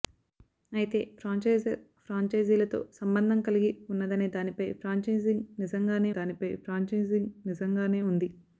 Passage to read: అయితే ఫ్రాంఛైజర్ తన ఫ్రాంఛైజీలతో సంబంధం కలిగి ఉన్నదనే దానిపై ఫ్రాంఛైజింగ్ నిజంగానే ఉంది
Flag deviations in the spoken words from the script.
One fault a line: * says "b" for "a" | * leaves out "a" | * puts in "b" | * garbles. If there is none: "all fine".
* leaves out "తన"
* puts in "దానిపై ఫ్రాంఛైజింగ్ నిజంగానే"